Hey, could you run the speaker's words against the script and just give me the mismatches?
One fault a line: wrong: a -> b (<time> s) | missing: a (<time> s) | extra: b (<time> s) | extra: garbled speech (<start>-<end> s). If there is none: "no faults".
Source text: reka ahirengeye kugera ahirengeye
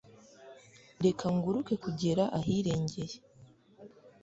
wrong: ahirengeye -> nguruke (1.4 s)